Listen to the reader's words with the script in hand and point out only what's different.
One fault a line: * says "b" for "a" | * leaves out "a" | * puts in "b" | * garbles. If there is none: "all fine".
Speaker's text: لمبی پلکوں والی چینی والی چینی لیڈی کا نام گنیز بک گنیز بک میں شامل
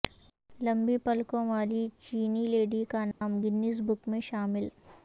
* leaves out "والی چینی"
* leaves out "گنیز بک"